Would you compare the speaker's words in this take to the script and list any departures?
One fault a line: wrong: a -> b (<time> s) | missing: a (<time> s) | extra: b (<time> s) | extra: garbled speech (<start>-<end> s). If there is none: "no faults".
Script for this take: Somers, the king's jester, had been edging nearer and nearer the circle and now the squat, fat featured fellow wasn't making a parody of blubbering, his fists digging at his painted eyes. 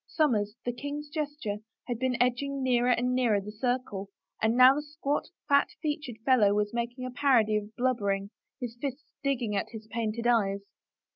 wrong: wasn't -> was (6.5 s)